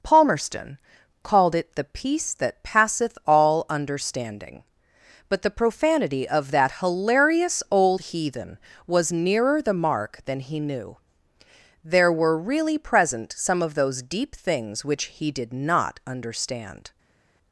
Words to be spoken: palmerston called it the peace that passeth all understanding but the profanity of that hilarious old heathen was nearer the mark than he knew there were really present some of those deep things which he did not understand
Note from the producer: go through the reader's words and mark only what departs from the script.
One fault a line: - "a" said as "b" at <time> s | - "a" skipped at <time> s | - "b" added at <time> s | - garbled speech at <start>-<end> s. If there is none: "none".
none